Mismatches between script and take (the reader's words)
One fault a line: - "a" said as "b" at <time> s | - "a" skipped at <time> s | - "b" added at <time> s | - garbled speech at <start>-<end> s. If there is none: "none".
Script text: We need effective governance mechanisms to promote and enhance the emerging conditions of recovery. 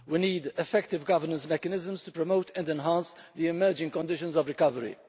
none